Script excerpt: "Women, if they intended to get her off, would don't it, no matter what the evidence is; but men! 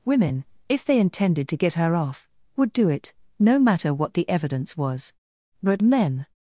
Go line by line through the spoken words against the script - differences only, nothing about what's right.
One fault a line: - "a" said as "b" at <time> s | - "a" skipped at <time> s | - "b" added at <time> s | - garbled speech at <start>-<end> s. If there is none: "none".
- "don't" said as "do" at 2.7 s
- "is" said as "was" at 4.8 s